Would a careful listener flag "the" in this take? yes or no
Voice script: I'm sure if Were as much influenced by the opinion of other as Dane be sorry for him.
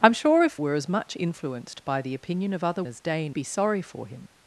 no